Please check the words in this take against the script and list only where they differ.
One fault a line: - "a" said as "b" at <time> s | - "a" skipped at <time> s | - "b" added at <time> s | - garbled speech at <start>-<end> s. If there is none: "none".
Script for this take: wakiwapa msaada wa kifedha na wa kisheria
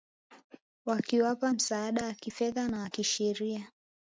none